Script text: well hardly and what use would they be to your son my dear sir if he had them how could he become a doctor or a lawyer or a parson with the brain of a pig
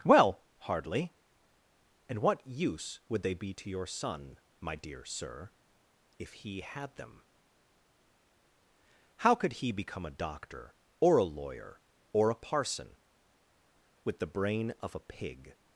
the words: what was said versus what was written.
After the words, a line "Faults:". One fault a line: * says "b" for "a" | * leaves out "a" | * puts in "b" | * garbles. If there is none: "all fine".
well hardly and what use would they be to your son my dear sir if he had them how could he become a doctor or a lawyer or a parson with the brain of a pig
Faults:
all fine